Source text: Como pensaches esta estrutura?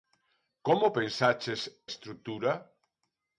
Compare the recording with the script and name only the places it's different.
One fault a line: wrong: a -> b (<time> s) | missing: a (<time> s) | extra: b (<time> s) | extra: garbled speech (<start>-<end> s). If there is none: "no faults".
missing: esta (1.6 s)